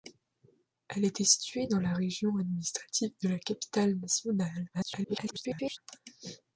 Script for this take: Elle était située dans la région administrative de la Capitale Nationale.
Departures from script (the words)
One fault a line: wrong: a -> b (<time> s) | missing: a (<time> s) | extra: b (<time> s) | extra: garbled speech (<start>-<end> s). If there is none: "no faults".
extra: garbled speech (4.7-5.8 s)